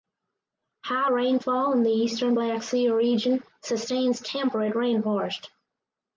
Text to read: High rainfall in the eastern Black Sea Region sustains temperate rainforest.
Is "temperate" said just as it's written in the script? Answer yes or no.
yes